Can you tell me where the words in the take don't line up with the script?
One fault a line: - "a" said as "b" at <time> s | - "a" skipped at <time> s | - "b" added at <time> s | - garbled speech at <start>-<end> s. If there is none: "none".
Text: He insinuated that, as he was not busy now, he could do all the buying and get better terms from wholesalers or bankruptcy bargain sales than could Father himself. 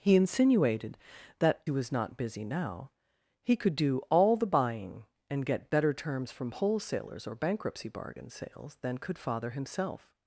- "as" skipped at 1.6 s